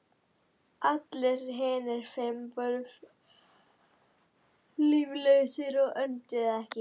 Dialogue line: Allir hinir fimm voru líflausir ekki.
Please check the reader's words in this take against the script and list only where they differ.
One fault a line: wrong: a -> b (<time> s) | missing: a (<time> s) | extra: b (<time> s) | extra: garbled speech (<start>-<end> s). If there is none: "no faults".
extra: og önduðu (5.8 s)